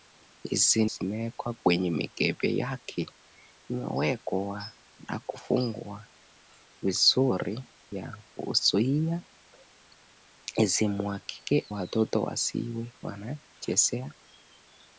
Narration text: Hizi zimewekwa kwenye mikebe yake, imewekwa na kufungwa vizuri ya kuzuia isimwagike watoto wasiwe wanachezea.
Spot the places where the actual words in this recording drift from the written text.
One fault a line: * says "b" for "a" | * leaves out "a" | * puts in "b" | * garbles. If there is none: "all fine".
all fine